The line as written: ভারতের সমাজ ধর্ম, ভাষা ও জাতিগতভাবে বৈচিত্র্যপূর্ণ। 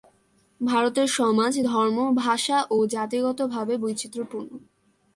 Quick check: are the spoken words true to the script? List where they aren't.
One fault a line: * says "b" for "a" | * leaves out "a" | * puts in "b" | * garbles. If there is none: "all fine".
all fine